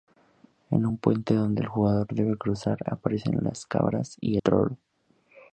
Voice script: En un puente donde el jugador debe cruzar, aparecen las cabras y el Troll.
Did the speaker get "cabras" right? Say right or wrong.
right